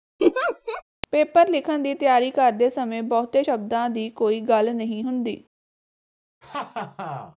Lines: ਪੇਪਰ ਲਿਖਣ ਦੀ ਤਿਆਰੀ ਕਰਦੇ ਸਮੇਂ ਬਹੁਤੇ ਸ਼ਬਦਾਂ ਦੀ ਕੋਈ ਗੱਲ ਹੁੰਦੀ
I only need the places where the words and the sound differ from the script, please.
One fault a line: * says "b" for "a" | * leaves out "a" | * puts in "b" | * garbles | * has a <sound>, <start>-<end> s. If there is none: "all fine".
* has a laugh, 0.2-0.8 s
* puts in "ਨਹੀਂ"
* has a laugh, 6.4-7.4 s